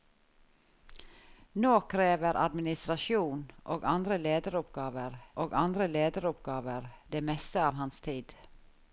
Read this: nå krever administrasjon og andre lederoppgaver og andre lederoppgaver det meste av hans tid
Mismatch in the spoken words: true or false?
false